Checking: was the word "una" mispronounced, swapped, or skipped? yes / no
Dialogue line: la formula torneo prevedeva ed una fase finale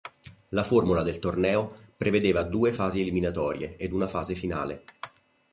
no